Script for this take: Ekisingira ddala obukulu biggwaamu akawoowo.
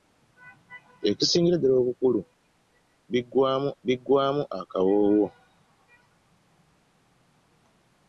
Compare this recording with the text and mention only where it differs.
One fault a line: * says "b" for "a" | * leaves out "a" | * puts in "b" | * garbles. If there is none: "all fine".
* puts in "biggwaamu"